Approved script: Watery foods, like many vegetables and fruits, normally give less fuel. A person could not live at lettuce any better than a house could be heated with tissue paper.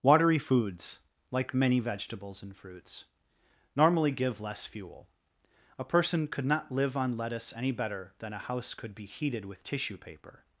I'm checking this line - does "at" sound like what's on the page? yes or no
no